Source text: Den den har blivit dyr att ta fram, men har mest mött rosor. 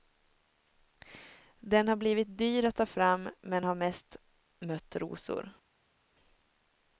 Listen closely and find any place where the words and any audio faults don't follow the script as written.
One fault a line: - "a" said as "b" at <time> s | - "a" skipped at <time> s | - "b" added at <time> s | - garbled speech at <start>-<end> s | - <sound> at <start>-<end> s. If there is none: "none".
- "den" skipped at 1.9 s